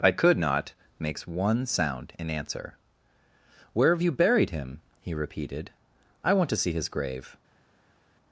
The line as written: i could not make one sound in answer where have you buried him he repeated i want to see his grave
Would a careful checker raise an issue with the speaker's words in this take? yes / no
yes